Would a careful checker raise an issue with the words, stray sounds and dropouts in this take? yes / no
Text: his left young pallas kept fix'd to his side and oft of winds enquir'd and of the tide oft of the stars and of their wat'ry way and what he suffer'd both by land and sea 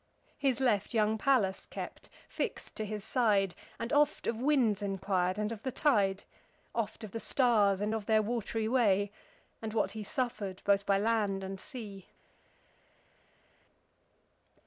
no